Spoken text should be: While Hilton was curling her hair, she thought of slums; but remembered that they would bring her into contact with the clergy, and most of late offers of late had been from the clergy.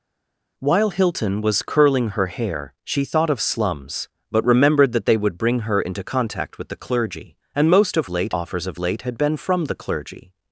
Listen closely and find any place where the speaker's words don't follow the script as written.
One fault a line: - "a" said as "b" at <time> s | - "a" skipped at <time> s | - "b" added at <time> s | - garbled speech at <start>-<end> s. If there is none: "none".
none